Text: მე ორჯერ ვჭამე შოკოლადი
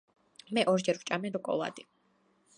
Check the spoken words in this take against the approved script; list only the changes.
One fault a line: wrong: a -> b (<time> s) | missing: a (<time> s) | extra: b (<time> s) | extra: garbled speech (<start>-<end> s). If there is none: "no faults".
no faults